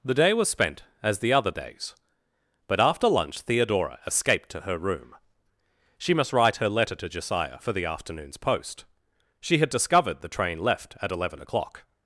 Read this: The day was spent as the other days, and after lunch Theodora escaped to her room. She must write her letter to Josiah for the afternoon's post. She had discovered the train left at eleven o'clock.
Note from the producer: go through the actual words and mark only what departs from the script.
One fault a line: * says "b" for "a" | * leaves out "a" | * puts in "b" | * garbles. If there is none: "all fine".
* says "but" for "and"